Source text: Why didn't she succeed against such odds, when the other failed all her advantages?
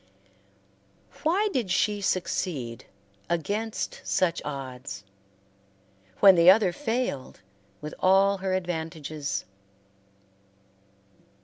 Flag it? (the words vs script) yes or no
yes